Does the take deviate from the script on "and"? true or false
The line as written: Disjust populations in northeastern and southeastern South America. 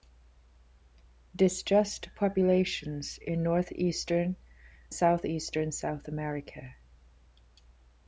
true